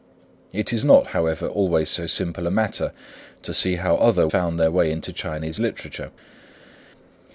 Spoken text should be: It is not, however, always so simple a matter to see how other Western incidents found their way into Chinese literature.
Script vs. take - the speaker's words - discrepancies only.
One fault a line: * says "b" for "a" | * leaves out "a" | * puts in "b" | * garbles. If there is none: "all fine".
* leaves out "Western incidents"